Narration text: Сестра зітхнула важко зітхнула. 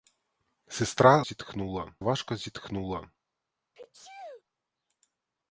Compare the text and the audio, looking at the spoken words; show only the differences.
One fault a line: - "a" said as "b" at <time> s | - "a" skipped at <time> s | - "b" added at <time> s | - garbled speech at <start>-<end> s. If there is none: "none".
none